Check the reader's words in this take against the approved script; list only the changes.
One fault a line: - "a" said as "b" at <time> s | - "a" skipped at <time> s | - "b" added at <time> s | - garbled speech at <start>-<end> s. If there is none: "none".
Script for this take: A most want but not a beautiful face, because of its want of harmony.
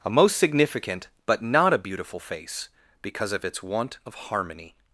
- "want" said as "significant" at 0.4 s